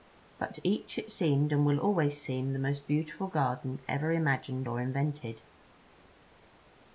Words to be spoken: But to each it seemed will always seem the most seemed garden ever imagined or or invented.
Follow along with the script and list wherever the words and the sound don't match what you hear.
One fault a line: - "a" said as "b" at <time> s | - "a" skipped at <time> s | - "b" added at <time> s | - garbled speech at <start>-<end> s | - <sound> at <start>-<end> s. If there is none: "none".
- "and" added at 1.5 s
- "seemed" said as "beautiful" at 2.8 s
- "or" skipped at 4.8 s